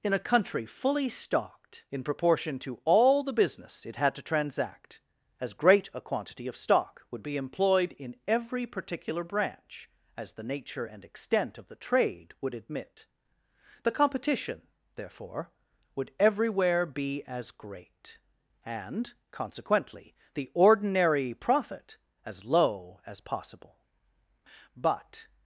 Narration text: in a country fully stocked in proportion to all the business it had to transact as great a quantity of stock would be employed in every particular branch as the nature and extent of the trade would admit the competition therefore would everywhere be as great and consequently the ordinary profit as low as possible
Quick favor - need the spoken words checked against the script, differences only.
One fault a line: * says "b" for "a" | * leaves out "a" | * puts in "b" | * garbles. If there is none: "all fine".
* puts in "but"